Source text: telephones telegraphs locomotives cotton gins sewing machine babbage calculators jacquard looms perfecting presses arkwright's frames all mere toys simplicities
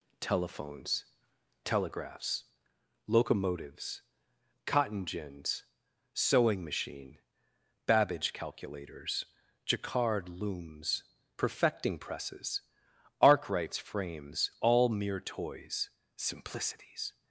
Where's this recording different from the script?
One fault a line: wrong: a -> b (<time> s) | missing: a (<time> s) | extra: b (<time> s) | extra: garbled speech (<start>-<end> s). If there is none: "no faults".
no faults